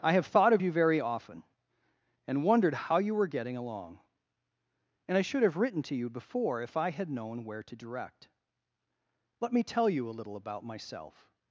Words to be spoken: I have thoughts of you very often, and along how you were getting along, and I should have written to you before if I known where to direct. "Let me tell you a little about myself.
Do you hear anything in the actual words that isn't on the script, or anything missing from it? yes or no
yes